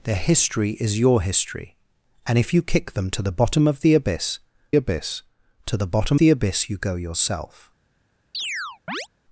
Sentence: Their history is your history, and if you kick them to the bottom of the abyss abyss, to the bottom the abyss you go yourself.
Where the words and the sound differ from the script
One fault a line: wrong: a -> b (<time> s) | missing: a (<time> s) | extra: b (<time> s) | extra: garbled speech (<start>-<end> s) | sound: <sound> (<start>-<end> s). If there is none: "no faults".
sound: chirp (8.3-9.1 s)